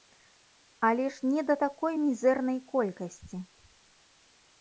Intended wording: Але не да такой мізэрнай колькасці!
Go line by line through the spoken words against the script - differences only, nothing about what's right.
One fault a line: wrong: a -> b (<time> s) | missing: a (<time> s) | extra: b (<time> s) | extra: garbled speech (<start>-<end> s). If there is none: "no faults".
extra: ж (1.2 s)